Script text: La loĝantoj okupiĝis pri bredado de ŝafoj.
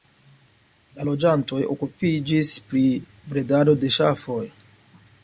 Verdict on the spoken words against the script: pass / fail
pass